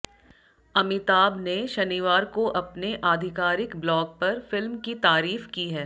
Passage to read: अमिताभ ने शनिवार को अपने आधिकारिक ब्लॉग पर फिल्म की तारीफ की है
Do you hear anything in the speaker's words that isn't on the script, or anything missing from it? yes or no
no